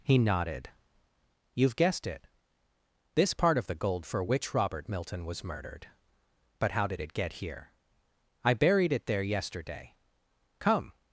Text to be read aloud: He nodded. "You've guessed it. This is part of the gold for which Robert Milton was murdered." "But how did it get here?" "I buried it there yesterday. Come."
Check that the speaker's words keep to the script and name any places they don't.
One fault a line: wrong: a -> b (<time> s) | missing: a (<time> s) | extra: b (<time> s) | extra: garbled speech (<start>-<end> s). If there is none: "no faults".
missing: is (3.3 s)